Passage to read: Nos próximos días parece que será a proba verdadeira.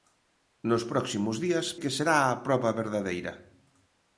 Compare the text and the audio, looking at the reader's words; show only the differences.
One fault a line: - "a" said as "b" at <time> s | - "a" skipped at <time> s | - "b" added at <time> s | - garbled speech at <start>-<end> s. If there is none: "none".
- "parece" skipped at 1.7 s